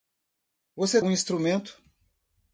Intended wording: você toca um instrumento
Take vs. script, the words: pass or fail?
fail